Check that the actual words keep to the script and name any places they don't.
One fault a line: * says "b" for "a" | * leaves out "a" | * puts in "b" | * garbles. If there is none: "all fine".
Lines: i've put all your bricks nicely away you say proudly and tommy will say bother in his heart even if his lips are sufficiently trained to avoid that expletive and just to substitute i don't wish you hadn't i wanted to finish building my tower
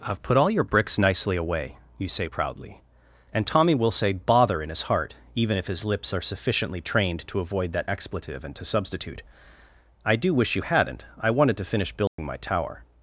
* leaves out "just"
* says "do" for "don't"